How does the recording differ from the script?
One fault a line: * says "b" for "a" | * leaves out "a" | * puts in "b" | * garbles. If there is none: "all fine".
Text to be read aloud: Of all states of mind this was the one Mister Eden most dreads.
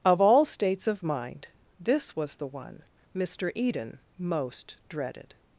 * says "dreaded" for "dreads"